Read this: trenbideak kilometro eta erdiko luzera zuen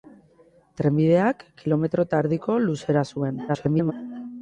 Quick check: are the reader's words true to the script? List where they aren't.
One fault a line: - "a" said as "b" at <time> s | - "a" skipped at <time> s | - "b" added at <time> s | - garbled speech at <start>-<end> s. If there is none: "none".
- garbled speech at 3.5-3.9 s